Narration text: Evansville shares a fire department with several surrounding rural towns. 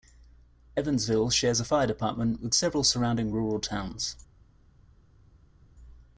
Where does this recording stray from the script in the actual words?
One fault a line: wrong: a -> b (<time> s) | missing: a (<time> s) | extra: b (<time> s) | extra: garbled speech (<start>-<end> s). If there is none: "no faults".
no faults